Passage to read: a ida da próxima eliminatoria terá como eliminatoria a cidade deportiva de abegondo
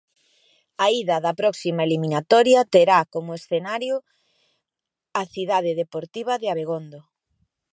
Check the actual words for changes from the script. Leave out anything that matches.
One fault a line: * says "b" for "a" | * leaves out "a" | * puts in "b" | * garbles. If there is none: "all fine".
* says "escenario" for "eliminatoria"